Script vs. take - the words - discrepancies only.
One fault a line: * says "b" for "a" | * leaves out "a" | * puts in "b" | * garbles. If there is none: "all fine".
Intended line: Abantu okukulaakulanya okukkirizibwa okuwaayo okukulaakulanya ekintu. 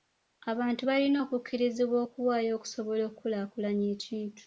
* says "balina" for "okukulaakulanya"
* puts in "okusobola"